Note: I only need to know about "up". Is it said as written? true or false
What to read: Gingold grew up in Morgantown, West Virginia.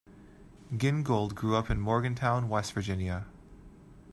true